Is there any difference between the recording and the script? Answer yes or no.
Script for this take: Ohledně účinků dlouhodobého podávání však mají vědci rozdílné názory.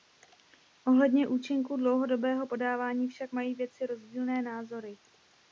no